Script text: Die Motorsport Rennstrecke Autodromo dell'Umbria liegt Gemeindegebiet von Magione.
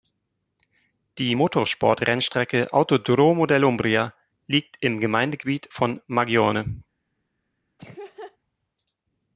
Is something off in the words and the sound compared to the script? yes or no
yes